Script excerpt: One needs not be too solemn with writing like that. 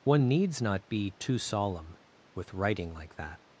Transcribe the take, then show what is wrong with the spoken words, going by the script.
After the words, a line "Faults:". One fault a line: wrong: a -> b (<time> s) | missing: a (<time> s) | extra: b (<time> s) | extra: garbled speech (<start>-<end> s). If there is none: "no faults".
One needs not be too solemn with writing like that.
Faults:
no faults